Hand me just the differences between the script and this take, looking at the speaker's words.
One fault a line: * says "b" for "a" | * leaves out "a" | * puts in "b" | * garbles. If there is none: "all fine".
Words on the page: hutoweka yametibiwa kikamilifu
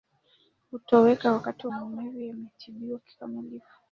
* puts in "wakati maumivu"